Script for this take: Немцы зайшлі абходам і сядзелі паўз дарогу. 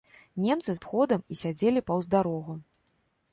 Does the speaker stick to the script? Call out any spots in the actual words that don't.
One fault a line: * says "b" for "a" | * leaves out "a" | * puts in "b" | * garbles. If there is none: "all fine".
* leaves out "зайшлі"